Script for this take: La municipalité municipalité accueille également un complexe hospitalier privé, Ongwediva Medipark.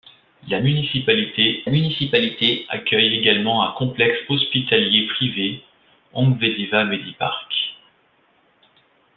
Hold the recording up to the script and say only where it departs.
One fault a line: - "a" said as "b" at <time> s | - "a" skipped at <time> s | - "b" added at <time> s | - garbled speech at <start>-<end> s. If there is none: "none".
none